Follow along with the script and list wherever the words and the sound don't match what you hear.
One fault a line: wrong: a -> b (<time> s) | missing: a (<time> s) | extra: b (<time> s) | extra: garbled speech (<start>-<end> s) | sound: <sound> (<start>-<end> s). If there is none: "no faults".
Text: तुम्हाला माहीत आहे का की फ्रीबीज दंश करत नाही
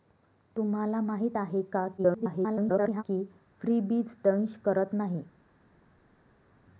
extra: garbled speech (2.0-3.0 s)